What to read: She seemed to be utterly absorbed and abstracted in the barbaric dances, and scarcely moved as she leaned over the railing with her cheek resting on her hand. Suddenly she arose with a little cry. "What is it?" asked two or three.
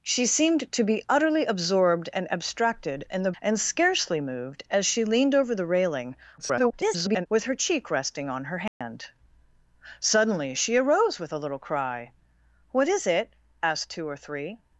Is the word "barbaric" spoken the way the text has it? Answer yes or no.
no